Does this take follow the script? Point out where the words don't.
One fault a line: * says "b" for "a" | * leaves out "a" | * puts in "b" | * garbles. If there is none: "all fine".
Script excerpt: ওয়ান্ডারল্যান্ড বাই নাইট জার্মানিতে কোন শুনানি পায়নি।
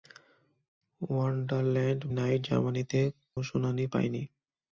* leaves out "বাই"
* leaves out "কোন"